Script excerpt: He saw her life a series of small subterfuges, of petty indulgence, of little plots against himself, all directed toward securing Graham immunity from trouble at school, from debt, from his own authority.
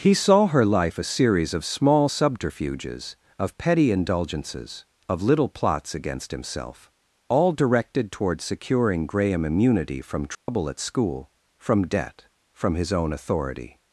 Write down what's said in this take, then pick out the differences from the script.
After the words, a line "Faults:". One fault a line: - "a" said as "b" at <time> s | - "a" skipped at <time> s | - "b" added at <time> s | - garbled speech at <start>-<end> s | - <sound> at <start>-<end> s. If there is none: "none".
He saw her life a series of small subterfuges, of petty indulgences, of little plots against himself, all directed toward securing Graham immunity from trouble at school, from debt, from his own authority.
Faults:
- "indulgence" said as "indulgences" at 3.9 s
- dropout at 10.3-10.5 s